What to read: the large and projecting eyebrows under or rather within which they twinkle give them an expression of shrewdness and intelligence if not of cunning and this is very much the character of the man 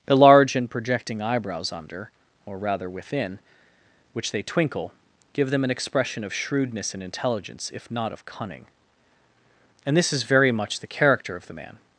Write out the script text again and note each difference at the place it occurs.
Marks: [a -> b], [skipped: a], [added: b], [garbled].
the large and projecting eyebrows under or rather within which they twinkle give them an expression of shrewdness and intelligence if not of cunning and this is very much the character of the man